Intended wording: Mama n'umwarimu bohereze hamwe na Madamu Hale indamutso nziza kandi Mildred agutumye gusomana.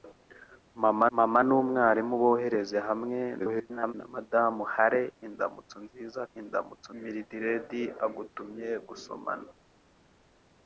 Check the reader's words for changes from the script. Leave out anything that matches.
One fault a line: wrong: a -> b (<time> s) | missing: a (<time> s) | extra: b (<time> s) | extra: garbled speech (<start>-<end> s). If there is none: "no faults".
extra: mama (1.2 s)
extra: garbled speech (3.4-3.9 s)
wrong: kandi -> indamutso (6.4 s)